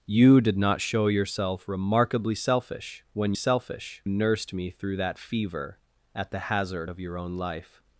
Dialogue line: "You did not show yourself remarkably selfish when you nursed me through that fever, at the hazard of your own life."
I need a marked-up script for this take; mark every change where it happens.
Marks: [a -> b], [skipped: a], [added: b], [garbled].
"You did not show yourself remarkably selfish when [you -> selfish] nursed me through that fever, at the hazard of your own life."